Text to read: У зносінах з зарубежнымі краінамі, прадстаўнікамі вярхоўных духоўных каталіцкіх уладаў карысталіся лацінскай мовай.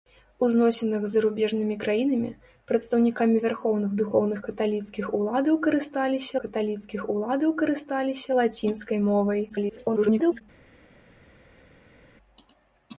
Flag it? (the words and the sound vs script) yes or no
yes